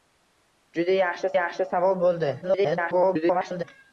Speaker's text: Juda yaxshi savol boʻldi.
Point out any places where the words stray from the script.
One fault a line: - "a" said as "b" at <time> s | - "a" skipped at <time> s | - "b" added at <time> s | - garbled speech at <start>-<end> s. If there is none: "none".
- "yaxshi" added at 1.3 s
- garbled speech at 2.4-3.6 s